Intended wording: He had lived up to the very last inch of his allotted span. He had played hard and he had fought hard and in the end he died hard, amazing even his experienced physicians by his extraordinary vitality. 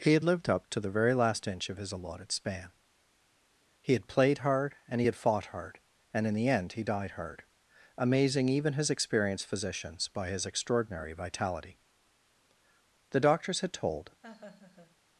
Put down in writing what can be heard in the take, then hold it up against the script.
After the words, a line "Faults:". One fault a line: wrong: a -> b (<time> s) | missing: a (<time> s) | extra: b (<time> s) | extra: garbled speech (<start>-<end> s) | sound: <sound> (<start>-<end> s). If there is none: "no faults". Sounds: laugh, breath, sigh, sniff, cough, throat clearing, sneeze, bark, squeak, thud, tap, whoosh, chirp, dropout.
He had lived up to the very last inch of his allotted span. He had played hard and he had fought hard and in the end he died hard, amazing even his experienced physicians by his extraordinary vitality. The doctors had told
Faults:
extra: The doctors had told (13.1 s)
sound: laugh (14.2-15.0 s)